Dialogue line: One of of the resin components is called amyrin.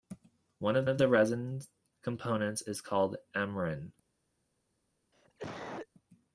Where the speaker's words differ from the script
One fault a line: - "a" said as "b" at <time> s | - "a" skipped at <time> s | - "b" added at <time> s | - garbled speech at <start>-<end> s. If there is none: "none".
none